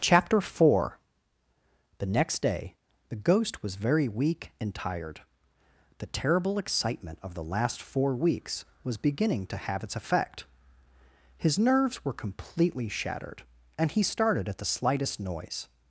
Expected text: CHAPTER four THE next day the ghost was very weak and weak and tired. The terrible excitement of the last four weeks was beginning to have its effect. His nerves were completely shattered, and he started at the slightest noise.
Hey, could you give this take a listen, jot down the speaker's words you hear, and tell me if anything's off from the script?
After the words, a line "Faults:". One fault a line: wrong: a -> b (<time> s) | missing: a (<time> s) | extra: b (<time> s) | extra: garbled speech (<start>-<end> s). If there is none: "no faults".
CHAPTER four THE next day the ghost was very weak and tired. The terrible excitement of the last four weeks was beginning to have its effect. His nerves were completely shattered, and he started at the slightest noise.
Faults:
missing: weak and (4.7 s)